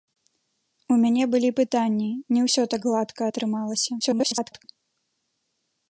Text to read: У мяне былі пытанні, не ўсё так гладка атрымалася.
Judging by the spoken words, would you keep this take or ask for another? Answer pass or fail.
fail